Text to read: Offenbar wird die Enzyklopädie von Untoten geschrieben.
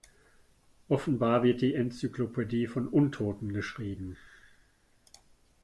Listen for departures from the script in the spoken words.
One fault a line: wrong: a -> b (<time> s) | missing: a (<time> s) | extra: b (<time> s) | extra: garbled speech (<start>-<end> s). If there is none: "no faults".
no faults